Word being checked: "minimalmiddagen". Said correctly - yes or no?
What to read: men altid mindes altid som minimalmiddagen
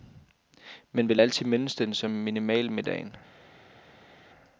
yes